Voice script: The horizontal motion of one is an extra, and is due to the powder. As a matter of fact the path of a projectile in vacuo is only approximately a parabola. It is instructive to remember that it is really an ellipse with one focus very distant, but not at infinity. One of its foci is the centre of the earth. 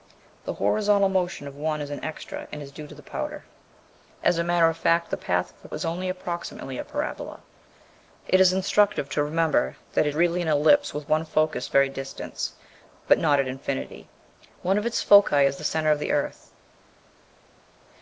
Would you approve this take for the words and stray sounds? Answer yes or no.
no